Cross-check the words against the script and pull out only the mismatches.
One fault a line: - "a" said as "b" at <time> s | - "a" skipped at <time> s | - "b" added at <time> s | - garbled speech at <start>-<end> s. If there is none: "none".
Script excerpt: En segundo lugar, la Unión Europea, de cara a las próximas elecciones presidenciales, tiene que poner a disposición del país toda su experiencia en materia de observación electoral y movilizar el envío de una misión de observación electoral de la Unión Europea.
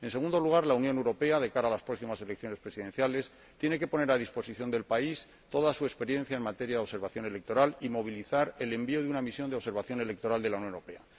none